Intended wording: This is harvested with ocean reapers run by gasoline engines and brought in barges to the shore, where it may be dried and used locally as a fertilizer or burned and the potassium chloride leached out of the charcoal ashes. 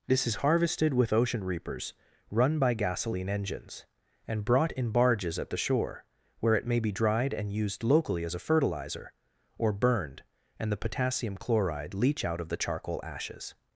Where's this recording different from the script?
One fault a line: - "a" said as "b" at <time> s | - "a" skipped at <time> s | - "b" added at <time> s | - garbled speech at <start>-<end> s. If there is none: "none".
- "to" said as "at" at 5.4 s
- "leached" said as "leach" at 11.9 s